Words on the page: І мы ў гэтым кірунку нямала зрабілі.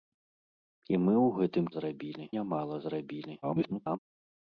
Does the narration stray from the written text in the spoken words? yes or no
yes